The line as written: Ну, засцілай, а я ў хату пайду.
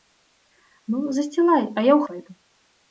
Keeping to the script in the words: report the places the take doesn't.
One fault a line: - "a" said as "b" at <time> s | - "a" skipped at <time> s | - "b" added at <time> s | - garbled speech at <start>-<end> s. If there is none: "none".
- "хату" skipped at 2.0 s